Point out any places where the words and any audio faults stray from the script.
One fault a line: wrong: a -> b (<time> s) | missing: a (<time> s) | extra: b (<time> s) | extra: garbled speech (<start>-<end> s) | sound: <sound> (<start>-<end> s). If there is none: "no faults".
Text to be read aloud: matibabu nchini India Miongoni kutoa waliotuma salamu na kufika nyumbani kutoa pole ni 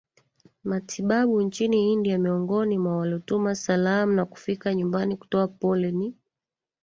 wrong: kutoa -> mwa (2.8 s)